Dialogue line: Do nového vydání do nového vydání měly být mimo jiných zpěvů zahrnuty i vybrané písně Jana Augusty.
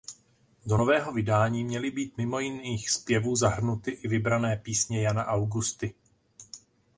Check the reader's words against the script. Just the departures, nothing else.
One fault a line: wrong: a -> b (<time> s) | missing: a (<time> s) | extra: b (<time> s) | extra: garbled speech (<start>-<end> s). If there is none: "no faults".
missing: do nového vydání (1.6 s)